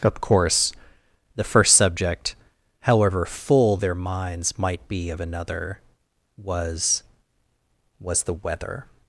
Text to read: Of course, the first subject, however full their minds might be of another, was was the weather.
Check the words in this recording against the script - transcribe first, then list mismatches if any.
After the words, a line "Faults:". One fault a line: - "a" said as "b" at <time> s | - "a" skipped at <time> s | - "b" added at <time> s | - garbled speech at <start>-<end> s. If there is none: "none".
Of course, the first subject, however full their minds might be of another, was was the weather.
Faults:
none